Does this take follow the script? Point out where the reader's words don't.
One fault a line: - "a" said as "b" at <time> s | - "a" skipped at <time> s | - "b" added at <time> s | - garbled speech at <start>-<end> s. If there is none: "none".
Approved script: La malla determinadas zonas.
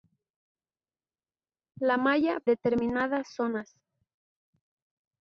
none